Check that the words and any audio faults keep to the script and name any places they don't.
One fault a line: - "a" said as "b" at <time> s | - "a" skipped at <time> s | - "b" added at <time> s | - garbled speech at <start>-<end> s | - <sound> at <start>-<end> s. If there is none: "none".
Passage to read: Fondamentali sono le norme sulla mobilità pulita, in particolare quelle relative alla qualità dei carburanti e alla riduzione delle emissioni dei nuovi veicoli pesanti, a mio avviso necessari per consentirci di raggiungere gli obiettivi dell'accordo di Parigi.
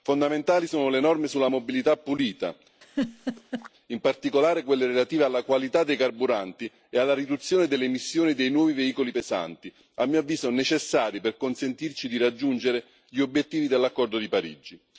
- laugh at 2.8-3.7 s